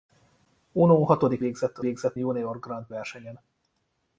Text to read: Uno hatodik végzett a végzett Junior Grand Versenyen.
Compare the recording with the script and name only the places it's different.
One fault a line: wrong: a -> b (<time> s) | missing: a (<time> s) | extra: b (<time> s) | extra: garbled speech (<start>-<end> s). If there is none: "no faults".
no faults